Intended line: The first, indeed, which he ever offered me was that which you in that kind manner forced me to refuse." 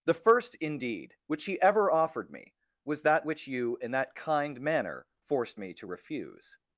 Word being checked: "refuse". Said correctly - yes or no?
yes